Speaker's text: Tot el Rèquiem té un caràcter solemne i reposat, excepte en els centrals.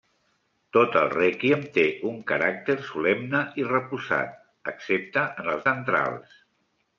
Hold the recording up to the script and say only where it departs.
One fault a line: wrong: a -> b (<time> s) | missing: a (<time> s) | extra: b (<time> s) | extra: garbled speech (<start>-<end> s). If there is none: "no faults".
no faults